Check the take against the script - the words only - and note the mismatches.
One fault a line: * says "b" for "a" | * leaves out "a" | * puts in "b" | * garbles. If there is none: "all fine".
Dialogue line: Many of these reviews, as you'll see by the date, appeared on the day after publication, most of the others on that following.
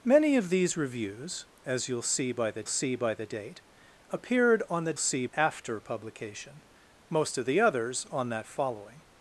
* puts in "see by the"
* says "see" for "day"